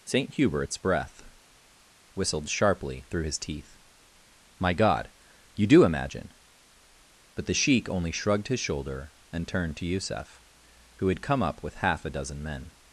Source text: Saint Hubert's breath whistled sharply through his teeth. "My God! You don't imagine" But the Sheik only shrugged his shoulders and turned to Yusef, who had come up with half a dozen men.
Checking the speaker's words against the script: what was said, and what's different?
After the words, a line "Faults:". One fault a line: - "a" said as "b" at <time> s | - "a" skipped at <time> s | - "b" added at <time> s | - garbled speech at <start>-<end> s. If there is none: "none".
Saint Hubert's breath whistled sharply through his teeth. "My God! You do imagine" But the Sheik only shrugged his shoulder and turned to Yusef, who had come up with half a dozen men.
Faults:
- "don't" said as "do" at 5.7 s
- "shoulders" said as "shoulder" at 8.6 s